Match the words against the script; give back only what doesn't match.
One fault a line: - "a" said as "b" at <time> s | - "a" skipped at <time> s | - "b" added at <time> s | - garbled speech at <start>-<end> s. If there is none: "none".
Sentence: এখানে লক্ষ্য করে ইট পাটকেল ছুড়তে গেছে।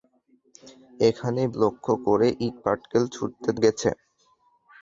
none